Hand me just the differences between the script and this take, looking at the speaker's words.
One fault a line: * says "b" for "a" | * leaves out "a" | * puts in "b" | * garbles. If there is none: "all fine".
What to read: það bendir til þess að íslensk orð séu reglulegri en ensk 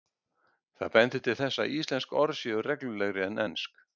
all fine